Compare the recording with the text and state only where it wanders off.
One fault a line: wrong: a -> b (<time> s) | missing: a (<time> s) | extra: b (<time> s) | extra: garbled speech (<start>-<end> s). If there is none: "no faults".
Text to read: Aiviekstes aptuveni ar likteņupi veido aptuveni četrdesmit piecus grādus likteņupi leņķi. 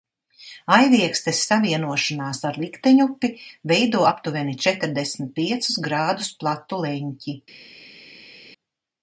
wrong: aptuveni -> savienošanās (1.5 s)
wrong: likteņupi -> platu (6.4 s)